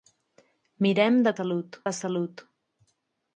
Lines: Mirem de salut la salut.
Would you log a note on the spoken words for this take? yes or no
no